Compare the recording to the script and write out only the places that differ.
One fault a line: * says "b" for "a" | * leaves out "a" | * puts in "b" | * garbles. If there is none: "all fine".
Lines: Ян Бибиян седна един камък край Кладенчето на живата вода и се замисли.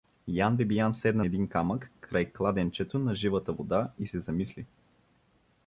all fine